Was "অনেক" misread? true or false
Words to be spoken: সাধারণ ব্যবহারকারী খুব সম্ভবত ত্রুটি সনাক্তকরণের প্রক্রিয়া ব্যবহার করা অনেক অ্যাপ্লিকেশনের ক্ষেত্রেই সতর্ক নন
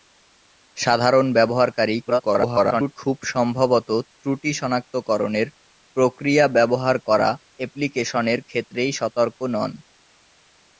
true